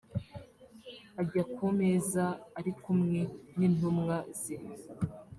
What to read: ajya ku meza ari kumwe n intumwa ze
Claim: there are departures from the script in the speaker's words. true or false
false